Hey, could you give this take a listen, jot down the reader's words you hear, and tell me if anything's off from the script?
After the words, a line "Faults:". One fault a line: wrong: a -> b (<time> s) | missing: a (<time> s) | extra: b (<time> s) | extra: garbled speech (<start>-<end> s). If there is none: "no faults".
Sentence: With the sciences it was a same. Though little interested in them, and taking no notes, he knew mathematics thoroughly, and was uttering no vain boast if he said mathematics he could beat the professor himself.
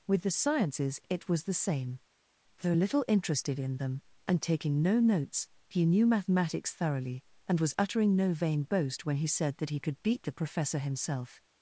With the sciences it was the same. Though little interested in them, and taking no notes, he knew mathematics thoroughly, and was uttering no vain boast when he said that he could beat the professor himself.
Faults:
wrong: a -> the (1.4 s)
wrong: if -> when (9.1 s)
wrong: mathematics -> that (9.6 s)